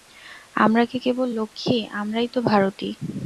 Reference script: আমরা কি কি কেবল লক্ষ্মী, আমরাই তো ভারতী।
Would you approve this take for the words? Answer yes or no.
no